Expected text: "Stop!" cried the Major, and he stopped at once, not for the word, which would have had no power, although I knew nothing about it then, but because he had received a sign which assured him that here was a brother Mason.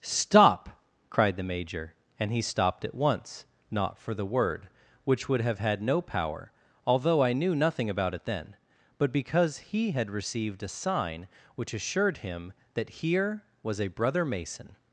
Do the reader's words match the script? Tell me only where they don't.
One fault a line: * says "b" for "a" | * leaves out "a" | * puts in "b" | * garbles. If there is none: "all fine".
all fine